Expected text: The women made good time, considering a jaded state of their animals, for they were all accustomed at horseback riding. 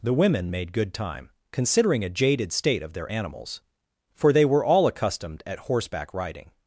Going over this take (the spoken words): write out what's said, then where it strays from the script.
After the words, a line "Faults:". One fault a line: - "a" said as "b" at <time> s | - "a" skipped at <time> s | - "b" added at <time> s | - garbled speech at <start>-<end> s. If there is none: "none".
The women made good time, considering a jaded state of their animals, for they were all accustomed at horseback riding.
Faults:
none